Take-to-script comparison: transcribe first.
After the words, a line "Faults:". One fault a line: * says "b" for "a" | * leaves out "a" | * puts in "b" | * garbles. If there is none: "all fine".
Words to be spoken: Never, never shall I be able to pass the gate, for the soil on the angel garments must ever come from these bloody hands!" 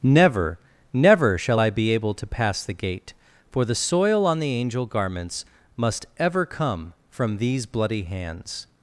Never, never shall I be able to pass the gate, for the soil on the angel garments must ever come from these bloody hands!"
Faults:
all fine